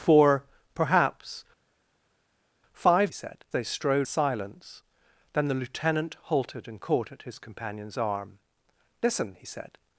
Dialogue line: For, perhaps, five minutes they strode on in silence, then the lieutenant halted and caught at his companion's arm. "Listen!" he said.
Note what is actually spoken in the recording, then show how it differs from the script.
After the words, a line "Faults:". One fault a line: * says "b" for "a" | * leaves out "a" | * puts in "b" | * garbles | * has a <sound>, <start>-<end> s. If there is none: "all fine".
For, perhaps, five said they strode silence, then the lieutenant halted and caught at his companion's arm. "Listen!" he said.
Faults:
* says "said" for "minutes"
* leaves out "on in"